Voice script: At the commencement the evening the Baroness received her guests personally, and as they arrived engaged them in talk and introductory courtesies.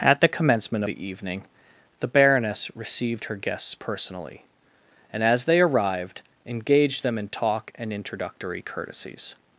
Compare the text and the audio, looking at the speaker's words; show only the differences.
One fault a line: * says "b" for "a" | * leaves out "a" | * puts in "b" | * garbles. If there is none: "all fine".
all fine